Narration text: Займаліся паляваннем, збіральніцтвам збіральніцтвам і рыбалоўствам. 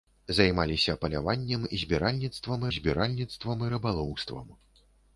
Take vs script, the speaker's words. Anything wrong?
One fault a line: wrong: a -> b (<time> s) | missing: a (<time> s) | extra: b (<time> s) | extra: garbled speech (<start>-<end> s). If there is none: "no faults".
no faults